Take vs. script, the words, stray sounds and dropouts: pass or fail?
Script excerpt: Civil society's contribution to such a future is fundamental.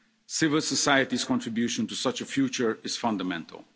pass